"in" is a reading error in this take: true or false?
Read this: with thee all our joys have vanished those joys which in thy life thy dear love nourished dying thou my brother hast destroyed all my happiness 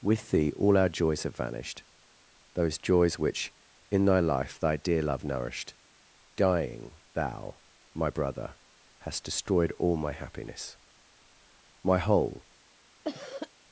false